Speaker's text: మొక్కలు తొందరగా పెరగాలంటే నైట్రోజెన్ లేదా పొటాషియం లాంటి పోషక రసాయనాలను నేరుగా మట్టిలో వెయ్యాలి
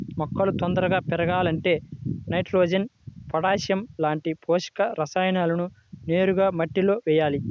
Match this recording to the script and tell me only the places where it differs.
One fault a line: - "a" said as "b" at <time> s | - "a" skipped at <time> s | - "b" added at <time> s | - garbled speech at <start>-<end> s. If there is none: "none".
- "లేదా" skipped at 2.9 s